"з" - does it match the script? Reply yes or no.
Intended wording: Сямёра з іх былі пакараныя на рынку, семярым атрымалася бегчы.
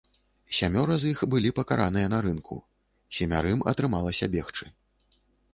yes